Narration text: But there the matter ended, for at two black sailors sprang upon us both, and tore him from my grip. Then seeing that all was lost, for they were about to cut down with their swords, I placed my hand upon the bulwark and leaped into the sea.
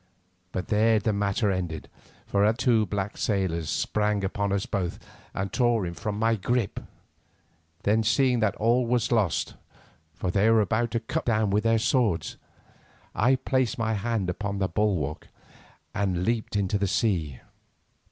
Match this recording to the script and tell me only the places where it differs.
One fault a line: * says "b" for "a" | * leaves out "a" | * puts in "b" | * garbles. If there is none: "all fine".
all fine